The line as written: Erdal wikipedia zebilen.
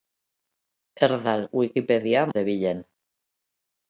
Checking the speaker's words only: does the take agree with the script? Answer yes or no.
yes